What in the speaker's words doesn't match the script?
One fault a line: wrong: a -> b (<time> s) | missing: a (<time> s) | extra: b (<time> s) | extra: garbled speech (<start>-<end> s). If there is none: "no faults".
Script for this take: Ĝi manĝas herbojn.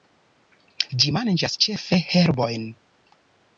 extra: ĉefe (1.7 s)